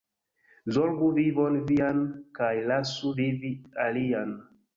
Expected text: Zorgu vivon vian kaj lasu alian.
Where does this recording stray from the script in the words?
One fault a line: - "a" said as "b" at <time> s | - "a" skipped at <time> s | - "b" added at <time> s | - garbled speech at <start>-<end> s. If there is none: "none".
- "vivi" added at 3.2 s